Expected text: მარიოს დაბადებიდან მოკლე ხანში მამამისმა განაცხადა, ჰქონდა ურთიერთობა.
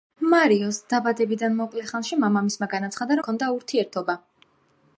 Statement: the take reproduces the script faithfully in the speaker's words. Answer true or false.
true